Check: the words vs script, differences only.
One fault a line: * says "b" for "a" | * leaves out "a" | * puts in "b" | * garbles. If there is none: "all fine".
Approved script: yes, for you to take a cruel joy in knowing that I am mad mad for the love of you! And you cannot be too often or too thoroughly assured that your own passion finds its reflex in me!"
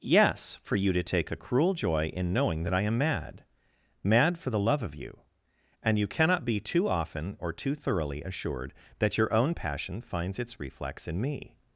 all fine